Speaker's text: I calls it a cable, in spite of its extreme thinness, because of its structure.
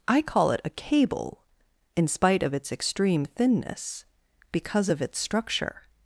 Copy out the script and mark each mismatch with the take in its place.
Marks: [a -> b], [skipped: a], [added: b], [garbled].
I [calls -> call] it a cable, in spite of its extreme thinness, because of its structure.